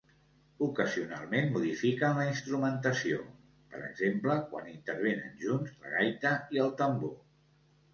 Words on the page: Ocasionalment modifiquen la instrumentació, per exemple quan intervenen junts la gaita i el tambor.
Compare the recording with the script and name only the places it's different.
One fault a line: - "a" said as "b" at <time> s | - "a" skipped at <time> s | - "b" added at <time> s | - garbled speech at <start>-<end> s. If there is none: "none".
none